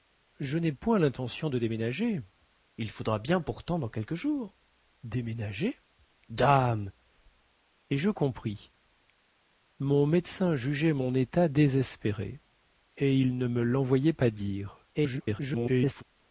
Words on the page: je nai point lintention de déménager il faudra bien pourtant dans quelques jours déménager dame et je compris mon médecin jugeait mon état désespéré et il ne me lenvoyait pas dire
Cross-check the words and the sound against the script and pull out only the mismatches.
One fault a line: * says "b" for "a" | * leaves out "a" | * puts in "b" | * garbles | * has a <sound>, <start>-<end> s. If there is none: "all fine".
* garbles